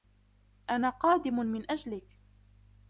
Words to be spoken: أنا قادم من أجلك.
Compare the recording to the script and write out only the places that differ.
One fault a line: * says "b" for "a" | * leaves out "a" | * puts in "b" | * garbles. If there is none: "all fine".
all fine